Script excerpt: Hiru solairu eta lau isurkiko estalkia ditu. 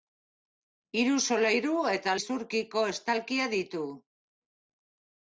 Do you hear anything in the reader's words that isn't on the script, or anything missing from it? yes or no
yes